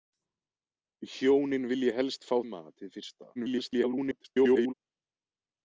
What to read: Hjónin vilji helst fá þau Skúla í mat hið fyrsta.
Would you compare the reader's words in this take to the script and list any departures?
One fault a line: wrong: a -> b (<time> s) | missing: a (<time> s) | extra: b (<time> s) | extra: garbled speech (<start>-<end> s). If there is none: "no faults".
missing: þau Skúla (2.3 s)
extra: garbled speech (3.3-4.7 s)